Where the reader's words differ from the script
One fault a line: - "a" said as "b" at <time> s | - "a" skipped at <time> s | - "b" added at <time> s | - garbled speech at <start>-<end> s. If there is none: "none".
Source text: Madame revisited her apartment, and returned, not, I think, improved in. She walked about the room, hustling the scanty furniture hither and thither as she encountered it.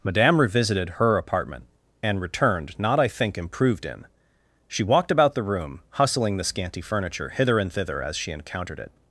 none